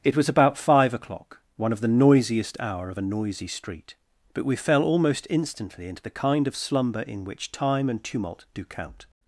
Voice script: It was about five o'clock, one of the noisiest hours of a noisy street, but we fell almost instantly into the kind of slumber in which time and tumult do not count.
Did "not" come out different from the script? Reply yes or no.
yes